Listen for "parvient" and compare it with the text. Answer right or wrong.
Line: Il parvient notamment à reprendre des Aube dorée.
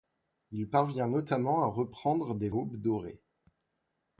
right